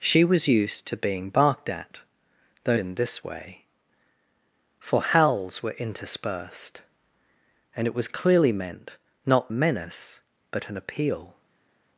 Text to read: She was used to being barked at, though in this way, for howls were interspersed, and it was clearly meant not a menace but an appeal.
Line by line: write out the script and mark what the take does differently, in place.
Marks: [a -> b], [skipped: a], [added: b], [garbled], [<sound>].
She was used to being barked at, though in this way, for howls were interspersed, and it was clearly meant not a menace but an appeal.